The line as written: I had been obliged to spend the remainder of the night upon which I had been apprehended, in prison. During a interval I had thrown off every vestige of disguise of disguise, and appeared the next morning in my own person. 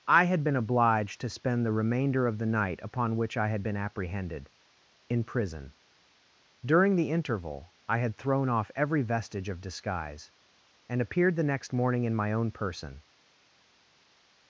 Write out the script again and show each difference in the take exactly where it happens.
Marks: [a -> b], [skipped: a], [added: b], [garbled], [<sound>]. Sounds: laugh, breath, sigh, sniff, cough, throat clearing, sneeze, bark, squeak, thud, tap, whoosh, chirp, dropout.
I had been obliged to spend the remainder of the night upon which I had been apprehended, in prison. During [a -> the] interval I had thrown off every vestige of disguise [skipped: of disguise,] and appeared the next morning in my own person.